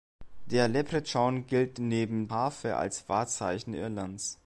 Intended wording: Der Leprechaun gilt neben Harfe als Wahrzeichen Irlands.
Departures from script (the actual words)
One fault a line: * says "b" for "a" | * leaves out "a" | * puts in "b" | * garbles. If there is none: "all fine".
all fine